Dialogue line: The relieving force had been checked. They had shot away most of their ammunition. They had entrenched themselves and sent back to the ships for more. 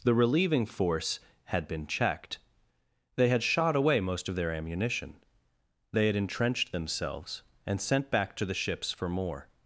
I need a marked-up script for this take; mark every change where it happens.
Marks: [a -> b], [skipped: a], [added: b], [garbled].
The relieving force had been checked. They had shot away most of their ammunition. They had entrenched themselves and sent back to the ships for more.